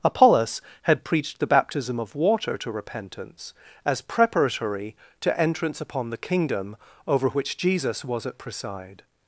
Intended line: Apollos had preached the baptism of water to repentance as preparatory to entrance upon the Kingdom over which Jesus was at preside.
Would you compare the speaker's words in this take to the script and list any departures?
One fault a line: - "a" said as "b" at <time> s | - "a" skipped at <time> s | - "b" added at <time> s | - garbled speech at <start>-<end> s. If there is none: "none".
none